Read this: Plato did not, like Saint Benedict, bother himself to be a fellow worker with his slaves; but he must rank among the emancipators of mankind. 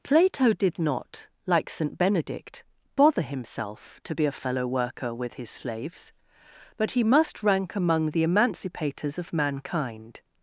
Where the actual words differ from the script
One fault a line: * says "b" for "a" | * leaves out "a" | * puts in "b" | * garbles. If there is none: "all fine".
all fine